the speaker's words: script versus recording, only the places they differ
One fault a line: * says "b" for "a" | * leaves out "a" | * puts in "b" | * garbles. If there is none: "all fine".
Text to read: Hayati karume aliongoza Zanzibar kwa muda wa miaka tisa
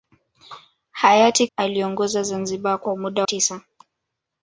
* leaves out "karume"
* leaves out "wa miaka"